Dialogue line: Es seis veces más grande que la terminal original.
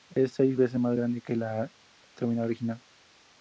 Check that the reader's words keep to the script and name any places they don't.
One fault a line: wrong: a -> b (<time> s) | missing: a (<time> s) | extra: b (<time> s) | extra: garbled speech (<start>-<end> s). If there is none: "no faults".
no faults